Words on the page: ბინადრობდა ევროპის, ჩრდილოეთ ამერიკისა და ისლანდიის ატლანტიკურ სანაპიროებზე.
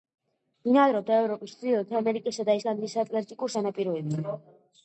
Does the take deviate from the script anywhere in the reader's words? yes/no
no